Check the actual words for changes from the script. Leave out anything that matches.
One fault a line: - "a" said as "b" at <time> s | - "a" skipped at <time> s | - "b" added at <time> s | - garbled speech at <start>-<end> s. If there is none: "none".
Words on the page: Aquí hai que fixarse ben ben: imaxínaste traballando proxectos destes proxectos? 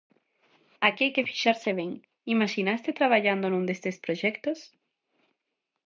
- "ben" skipped at 1.9 s
- "proxectos" said as "nun" at 3.5 s